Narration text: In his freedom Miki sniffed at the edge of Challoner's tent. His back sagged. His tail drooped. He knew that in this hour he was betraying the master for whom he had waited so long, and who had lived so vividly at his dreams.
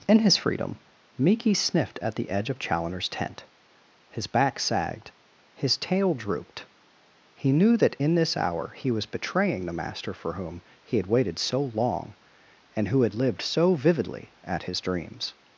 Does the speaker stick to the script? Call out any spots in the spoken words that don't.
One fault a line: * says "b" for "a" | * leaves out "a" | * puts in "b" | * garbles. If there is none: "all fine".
all fine